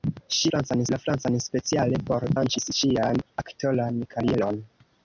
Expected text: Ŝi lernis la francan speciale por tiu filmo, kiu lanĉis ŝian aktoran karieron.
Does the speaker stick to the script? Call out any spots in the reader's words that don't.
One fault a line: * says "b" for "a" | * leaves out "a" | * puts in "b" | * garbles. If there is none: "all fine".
* says "francan" for "lernis"
* leaves out "tiu filmo kiu"